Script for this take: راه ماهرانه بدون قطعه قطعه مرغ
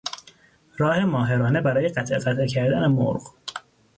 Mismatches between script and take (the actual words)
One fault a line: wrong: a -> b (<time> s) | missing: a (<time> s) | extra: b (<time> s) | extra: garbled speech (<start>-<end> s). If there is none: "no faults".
wrong: بدون -> برای (1.6 s)
extra: کردن (2.5 s)